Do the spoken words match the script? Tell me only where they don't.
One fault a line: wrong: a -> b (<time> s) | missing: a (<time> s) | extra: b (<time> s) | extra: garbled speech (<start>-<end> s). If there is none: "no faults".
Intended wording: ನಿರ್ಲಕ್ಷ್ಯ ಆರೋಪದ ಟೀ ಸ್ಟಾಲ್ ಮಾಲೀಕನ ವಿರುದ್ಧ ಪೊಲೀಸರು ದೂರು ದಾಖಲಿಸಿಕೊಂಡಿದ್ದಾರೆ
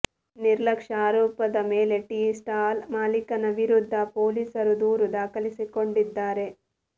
extra: ಮೇಲೆ (1.7 s)